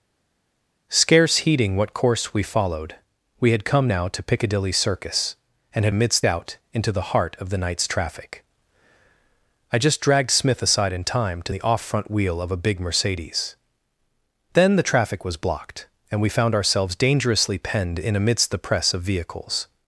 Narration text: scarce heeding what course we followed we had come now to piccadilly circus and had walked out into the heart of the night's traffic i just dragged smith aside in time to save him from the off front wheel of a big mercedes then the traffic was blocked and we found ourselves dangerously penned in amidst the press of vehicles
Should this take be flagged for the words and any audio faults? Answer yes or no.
yes